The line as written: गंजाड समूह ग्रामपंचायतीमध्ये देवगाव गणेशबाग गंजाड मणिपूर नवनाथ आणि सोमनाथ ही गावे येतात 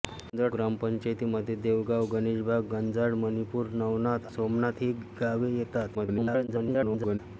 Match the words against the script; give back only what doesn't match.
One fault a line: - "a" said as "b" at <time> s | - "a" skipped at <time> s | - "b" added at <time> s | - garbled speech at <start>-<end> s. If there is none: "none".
- "समूह" skipped at 0.5 s
- "आणि" skipped at 4.3 s
- garbled speech at 5.9-7.2 s